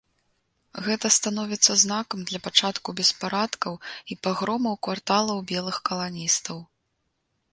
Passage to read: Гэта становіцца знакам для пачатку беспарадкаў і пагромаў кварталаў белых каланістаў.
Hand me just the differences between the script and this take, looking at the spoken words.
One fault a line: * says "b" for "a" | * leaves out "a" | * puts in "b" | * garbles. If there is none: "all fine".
all fine